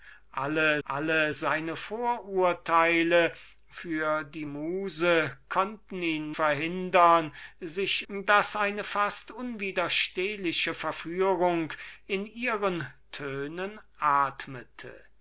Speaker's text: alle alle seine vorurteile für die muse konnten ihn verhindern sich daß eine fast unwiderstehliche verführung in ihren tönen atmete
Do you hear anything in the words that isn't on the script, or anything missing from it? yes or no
no